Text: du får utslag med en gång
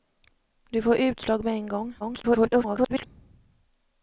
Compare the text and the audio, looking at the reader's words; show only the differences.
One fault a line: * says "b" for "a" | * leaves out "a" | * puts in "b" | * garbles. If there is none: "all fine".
* garbles